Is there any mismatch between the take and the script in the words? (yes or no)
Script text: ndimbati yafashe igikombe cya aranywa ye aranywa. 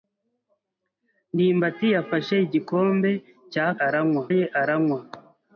no